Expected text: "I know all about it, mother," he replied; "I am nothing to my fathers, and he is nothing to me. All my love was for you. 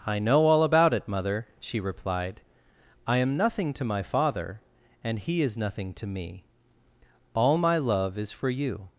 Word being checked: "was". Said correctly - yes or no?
no